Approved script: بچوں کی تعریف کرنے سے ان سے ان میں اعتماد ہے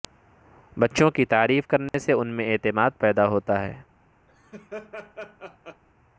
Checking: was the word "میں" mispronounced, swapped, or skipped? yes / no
yes